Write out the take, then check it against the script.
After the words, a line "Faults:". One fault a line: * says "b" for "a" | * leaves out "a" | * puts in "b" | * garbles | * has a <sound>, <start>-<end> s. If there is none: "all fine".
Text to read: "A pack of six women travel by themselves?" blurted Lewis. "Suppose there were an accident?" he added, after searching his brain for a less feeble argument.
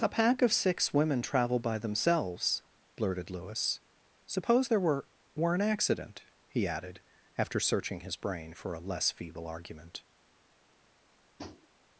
"A pack of six women travel by themselves?" blurted Lewis. "Suppose there were were an accident?" he added, after searching his brain for a less feeble argument.
Faults:
* puts in "were"
* has a tap, 11.4-11.7 s